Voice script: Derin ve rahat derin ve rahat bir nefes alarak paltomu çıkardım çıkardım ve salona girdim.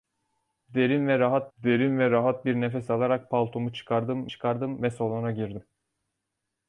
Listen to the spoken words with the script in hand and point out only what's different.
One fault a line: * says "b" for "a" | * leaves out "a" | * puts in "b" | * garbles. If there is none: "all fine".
all fine